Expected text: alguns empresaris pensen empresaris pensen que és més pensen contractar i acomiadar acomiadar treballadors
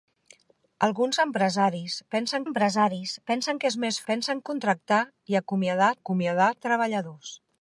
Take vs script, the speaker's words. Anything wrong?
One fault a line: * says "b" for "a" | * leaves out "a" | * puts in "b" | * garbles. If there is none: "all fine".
all fine